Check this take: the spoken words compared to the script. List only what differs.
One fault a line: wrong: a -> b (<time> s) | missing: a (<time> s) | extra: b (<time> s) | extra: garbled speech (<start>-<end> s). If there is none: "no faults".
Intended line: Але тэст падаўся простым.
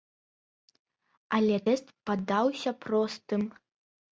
no faults